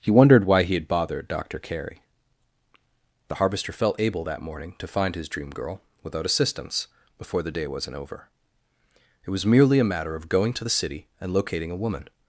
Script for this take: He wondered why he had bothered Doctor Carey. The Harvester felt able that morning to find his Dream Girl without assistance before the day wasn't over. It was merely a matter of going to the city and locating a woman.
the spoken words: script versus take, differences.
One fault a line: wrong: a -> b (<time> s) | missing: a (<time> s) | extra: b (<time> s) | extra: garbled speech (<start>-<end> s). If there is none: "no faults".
no faults